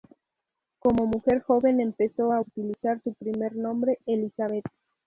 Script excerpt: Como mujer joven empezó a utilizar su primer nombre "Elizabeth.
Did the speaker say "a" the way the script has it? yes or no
yes